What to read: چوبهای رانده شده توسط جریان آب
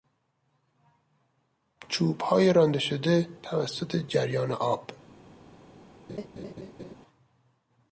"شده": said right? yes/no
yes